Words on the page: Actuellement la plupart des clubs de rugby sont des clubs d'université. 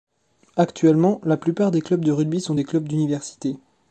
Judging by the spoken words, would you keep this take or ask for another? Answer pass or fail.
pass